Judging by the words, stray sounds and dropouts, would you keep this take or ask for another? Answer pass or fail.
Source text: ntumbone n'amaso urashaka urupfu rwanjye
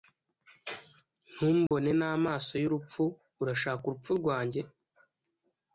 fail